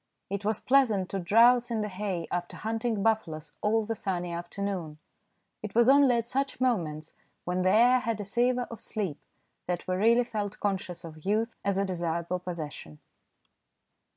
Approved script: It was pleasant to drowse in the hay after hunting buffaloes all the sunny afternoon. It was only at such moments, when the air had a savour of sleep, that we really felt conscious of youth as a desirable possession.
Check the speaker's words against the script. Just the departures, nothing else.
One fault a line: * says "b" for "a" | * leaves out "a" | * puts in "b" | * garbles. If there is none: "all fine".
all fine